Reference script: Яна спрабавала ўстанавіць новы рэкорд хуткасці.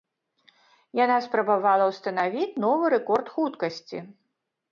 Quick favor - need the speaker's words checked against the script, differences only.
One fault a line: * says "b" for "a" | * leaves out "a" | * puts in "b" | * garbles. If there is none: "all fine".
all fine